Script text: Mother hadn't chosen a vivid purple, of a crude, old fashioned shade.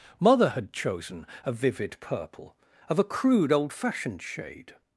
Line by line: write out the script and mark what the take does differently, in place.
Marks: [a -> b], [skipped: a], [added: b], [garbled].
Mother [hadn't -> had] chosen a vivid purple, of a crude, old fashioned shade.